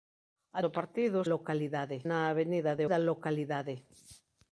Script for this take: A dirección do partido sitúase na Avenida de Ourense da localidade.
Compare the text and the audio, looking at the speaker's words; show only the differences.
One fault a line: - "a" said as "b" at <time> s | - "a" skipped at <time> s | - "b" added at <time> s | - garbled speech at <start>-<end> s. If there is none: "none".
- "dirección" skipped at 0.6 s
- "sitúase" said as "localidade" at 1.3 s
- "Ourense" skipped at 2.9 s